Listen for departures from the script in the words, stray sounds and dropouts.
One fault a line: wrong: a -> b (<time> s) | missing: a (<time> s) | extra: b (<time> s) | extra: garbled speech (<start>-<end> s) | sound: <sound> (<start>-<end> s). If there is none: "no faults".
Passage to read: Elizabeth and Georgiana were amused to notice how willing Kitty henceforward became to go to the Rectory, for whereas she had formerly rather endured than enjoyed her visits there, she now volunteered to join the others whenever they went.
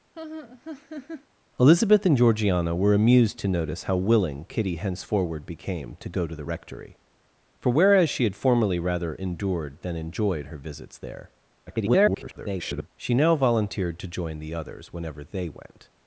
sound: laugh (0.1-1.3 s)
extra: garbled speech (11.7-12.9 s)